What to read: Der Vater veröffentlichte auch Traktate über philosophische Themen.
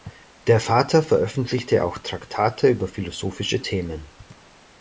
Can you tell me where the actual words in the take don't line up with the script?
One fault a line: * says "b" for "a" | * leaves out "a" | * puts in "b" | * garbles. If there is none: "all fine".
all fine